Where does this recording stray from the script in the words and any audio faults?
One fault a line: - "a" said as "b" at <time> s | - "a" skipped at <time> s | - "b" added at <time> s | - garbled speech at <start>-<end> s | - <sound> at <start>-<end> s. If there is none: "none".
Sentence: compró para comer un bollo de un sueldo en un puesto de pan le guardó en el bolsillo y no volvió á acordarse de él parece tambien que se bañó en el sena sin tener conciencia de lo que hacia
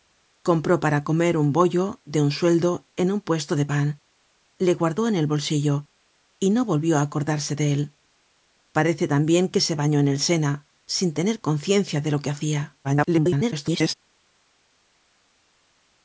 - garbled speech at 12.8-13.9 s